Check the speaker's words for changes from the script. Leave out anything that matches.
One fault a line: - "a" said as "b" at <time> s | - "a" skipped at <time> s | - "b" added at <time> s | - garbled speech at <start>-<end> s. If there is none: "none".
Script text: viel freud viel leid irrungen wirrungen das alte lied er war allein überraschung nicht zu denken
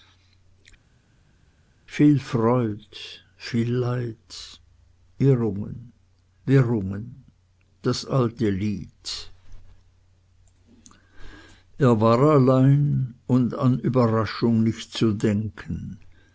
- "und an" added at 13.3 s